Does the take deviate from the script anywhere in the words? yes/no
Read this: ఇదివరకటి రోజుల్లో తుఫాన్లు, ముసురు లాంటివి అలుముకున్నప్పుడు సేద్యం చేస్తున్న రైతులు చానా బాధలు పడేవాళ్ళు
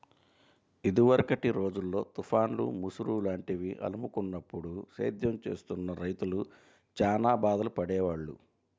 no